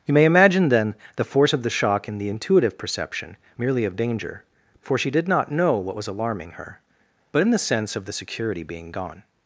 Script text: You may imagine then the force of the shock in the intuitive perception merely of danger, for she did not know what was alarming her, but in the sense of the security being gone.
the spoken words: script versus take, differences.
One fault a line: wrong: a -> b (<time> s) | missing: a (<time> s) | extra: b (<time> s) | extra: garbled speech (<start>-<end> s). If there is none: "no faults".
no faults